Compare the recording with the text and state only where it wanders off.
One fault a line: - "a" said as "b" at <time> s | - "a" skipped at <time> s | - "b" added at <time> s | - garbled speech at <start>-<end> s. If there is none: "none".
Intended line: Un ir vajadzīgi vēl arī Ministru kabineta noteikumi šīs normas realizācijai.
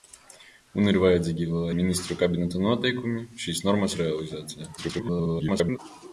- "arī" skipped at 1.7 s
- garbled speech at 4.8-5.8 s